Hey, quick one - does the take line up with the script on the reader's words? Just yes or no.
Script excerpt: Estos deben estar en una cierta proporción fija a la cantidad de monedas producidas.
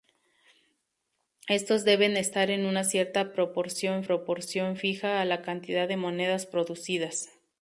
no